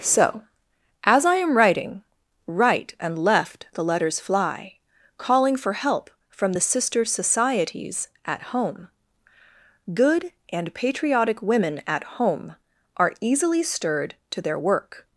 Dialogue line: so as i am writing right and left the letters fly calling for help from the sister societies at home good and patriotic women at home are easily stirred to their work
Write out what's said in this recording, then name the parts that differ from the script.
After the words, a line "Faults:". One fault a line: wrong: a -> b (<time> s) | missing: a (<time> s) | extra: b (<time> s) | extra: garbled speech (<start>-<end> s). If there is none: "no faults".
so as i am writing right and left the letters fly calling for help from the sister societies at home good and patriotic women at home are easily stirred to their work
Faults:
no faults